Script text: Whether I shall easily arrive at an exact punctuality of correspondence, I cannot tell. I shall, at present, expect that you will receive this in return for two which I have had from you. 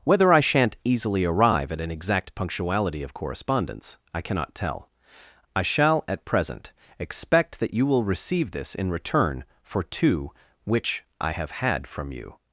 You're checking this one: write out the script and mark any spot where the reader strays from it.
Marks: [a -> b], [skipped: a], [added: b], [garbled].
Whether I [shall -> shan't] easily arrive at an exact punctuality of correspondence, I cannot tell. I shall, at present, expect that you will receive this in return for two which I have had from you.